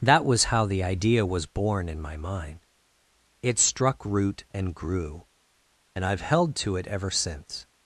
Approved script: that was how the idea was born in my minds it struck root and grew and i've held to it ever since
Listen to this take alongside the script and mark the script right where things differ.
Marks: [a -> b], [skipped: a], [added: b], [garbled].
that was how the idea was born in my [minds -> mind] it struck root and grew and i've held to it ever since